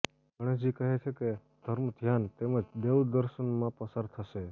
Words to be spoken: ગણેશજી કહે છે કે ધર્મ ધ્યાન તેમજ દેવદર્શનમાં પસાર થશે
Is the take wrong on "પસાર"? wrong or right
right